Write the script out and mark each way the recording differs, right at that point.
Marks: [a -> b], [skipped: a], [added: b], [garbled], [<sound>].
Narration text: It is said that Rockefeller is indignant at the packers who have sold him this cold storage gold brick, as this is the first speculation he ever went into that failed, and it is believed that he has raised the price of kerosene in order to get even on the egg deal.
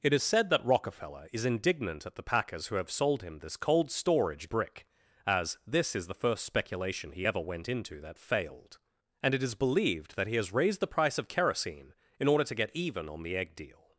It is said that Rockefeller is indignant at the packers who have sold him this cold storage [skipped: gold] brick, as this is the first speculation he ever went into that failed, and it is believed that he has raised the price of kerosene in order to get even on the egg deal.